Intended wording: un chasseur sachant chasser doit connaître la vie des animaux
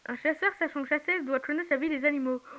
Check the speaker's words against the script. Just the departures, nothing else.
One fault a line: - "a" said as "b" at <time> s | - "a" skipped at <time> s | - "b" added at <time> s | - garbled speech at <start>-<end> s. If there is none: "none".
none